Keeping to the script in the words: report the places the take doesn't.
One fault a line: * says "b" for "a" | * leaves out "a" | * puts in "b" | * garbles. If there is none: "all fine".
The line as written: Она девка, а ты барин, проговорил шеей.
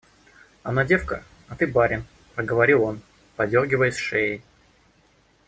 * puts in "он подергиваясь"